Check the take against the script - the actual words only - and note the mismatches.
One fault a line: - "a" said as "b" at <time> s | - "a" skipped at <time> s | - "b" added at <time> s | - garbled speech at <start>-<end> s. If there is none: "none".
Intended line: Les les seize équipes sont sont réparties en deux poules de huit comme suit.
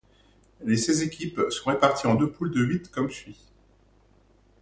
- "les" skipped at 0.8 s
- "sont" skipped at 1.7 s